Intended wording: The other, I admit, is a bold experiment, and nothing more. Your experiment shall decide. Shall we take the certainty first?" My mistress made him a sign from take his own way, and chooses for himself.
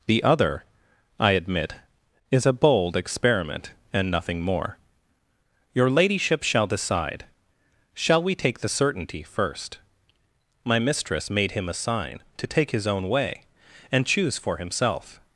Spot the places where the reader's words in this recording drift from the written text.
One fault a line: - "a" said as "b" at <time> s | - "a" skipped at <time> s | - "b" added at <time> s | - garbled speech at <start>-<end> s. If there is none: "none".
- "experiment" said as "ladyship" at 5.9 s
- "from" said as "to" at 12.4 s
- "chooses" said as "choose" at 14.1 s